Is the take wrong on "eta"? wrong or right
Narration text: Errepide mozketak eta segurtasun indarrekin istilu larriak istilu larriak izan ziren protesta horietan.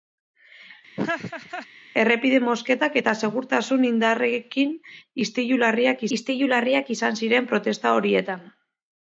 right